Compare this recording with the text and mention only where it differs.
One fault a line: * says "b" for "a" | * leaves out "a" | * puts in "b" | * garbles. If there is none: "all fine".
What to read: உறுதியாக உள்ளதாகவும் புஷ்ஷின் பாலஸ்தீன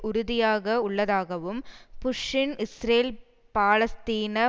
* puts in "இஸ்ரேல்"